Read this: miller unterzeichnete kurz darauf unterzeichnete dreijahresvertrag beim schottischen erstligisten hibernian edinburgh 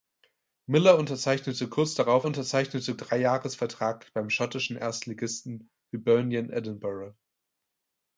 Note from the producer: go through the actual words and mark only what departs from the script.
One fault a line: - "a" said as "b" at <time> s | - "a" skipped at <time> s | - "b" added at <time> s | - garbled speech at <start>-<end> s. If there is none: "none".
none